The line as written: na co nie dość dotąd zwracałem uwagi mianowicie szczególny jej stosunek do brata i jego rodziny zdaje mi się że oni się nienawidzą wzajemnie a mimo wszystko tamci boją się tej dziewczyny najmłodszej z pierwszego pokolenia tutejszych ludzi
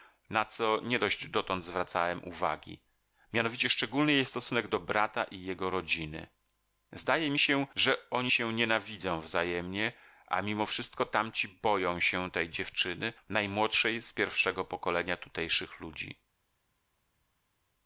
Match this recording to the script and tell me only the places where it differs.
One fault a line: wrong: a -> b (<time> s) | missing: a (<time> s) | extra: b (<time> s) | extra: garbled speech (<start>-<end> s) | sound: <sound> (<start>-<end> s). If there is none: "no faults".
no faults